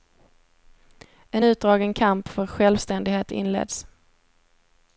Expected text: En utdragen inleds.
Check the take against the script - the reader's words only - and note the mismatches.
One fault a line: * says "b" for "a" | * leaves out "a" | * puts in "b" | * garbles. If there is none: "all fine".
* puts in "kamp för självständighet"